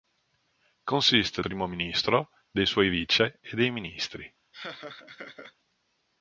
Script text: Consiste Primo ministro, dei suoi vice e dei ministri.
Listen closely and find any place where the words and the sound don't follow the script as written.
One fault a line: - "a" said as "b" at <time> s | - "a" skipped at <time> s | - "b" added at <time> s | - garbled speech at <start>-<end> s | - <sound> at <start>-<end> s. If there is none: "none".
- laugh at 4.5-5.5 s